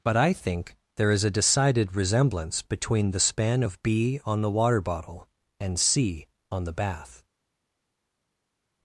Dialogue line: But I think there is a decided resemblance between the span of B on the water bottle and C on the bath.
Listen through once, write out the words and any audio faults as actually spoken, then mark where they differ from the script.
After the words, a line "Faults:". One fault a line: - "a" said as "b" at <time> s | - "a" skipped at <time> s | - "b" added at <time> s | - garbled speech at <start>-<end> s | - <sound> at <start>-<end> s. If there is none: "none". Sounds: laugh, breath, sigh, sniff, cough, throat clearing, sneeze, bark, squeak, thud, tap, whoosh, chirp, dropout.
But I think there is a decided resemblance between the span of B on the water bottle and C on the bath.
Faults:
none